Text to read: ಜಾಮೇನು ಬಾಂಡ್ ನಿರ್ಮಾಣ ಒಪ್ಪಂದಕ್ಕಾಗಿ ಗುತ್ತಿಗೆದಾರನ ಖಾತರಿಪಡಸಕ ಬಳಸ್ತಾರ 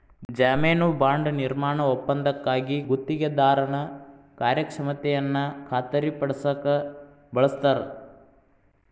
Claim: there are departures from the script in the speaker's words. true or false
true